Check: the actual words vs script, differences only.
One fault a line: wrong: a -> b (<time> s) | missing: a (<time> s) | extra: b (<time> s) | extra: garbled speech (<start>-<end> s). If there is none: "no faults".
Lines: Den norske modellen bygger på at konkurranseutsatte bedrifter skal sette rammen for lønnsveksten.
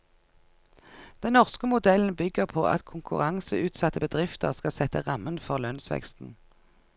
no faults